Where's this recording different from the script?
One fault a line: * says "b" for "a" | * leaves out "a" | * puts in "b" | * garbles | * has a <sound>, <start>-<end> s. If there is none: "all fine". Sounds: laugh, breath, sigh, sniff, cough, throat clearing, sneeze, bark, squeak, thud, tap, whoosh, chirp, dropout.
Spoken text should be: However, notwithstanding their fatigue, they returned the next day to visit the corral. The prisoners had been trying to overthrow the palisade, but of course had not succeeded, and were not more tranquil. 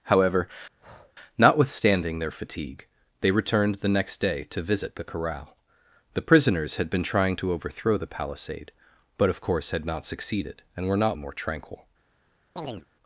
* has a breath, 0.8-1.1 s
* has a chirp, 12.6-12.9 s